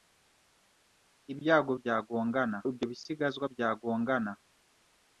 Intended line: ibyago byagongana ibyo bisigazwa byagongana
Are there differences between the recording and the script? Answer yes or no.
no